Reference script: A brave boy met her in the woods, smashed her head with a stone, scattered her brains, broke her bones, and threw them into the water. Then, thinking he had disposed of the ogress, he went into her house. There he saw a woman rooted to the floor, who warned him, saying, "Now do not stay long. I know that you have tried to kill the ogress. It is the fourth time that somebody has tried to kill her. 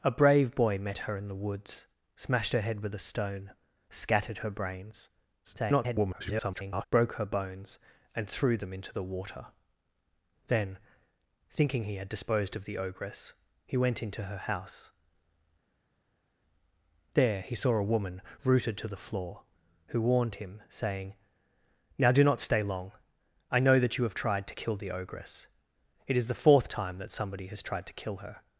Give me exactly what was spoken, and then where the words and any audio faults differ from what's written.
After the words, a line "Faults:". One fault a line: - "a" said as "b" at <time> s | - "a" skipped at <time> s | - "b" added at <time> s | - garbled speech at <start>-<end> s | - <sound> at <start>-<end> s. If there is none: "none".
A brave boy met her in the woods, smashed her head with a stone, scattered her brains, [garbled] broke her bones, and threw them into the water. Then, thinking he had disposed of the ogress, he went into her house. There he saw a woman rooted to the floor, who warned him, saying, "Now do not stay long. I know that you have tried to kill the ogress. It is the fourth time that somebody has tried to kill her.
Faults:
- garbled speech at 5.4-6.8 s